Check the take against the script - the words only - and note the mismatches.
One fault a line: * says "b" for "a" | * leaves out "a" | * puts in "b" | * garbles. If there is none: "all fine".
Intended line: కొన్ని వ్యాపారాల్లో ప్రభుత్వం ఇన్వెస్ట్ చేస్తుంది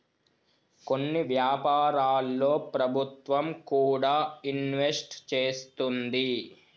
* puts in "కూడా"